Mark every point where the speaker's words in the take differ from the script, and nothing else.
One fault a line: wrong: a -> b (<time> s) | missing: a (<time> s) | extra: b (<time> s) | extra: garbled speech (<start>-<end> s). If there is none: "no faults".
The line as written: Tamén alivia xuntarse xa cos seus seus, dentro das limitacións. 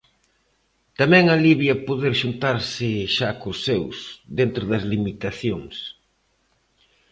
extra: poder (1.9 s)
missing: seus (4.0 s)